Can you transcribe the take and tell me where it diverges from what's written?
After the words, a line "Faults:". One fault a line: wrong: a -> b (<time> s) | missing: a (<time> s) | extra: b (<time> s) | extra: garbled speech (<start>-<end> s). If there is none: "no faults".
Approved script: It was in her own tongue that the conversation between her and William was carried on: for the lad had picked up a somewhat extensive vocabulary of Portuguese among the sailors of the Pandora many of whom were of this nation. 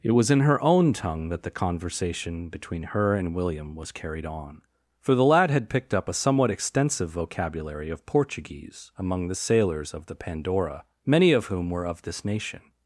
It was in her own tongue that the conversation between her and William was carried on: for the lad had picked up a somewhat extensive vocabulary of Portuguese among the sailors of the Pandora many of whom were of this nation.
Faults:
no faults